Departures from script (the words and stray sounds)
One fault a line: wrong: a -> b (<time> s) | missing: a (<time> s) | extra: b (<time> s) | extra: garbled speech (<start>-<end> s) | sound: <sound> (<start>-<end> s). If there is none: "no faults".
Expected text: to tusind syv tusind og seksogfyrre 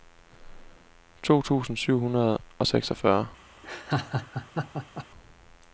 wrong: tusind -> hundrede (2.0 s)
sound: laugh (3.6-5.1 s)